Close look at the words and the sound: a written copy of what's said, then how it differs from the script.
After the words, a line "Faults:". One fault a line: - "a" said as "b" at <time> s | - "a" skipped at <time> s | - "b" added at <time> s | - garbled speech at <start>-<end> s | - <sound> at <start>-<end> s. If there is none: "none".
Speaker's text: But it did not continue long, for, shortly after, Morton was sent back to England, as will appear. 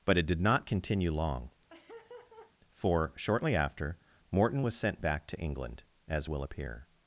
But it did not continue long, for, shortly after, Morton was sent back to England, as will appear.
Faults:
- laugh at 1.7-2.5 s